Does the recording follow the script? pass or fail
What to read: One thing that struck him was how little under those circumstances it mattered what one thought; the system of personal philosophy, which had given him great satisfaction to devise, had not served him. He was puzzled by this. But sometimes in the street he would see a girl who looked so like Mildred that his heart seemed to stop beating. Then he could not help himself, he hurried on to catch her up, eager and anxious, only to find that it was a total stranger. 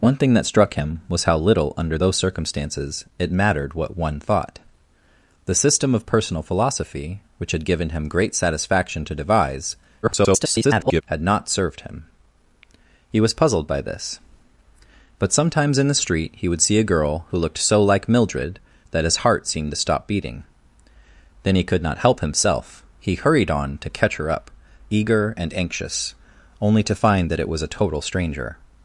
fail